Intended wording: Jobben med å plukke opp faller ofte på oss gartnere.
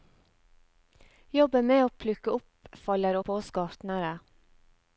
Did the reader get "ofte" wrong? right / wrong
wrong